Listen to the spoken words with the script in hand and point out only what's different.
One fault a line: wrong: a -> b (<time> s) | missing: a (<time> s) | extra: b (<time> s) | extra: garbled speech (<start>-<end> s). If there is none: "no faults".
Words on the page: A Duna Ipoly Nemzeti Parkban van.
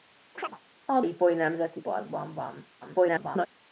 missing: Duna (1.0 s)
extra: garbled speech (2.8-3.5 s)